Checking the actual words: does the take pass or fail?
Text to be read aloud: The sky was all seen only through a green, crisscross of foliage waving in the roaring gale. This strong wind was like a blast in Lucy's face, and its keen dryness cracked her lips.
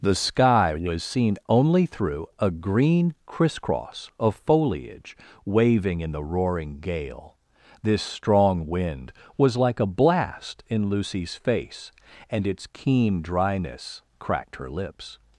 fail